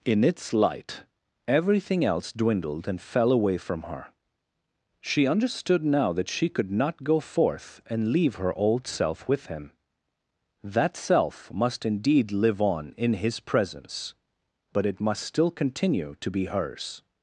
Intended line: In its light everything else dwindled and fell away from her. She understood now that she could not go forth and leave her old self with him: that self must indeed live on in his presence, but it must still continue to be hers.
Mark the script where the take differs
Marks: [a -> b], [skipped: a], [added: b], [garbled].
In its light everything else dwindled and fell away from her. She understood now that she could not go forth and leave her old self with him: that self must indeed live on in his presence, but it must still continue to be hers.